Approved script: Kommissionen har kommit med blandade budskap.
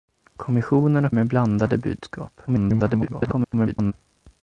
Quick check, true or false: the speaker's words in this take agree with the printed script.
false